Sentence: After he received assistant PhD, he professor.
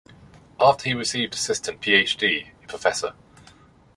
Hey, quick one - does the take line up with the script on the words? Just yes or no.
yes